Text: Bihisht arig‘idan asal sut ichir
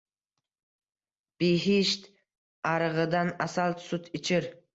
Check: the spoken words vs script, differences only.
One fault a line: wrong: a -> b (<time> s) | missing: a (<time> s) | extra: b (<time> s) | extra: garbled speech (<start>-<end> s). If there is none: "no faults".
no faults